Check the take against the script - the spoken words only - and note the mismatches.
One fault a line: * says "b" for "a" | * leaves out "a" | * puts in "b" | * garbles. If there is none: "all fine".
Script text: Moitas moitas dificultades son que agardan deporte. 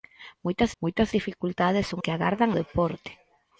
all fine